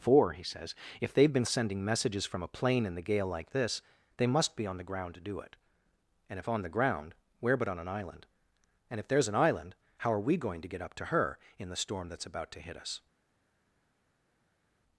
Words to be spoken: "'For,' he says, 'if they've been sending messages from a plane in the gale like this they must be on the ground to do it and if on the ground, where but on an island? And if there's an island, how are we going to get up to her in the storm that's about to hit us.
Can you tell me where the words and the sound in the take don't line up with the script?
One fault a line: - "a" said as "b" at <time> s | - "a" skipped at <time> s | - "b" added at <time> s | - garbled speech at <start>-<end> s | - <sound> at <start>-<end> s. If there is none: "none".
none